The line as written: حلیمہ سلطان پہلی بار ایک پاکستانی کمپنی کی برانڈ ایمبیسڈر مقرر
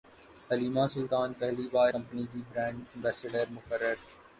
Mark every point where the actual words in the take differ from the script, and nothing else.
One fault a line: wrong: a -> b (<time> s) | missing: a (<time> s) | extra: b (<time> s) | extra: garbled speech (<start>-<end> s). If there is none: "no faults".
missing: ایک پاکستانی (1.9 s)